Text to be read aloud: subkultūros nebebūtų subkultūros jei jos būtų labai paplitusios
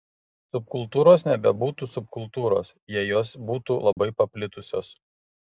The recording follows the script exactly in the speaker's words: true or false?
true